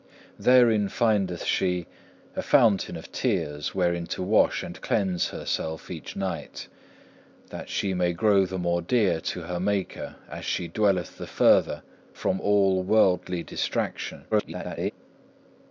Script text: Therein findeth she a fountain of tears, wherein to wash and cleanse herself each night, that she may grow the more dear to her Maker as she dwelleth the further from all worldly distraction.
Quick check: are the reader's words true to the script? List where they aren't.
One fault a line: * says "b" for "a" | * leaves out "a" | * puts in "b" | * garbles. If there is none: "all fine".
* garbles